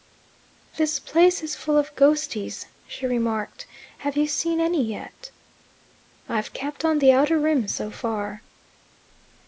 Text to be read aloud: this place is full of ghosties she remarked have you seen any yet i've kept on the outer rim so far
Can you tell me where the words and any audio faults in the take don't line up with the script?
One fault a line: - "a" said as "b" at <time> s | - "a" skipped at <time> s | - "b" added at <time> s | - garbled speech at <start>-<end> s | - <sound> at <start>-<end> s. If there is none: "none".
none